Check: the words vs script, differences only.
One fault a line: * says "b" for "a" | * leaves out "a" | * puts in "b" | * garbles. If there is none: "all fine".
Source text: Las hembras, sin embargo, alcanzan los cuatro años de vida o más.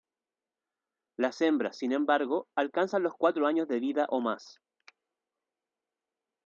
all fine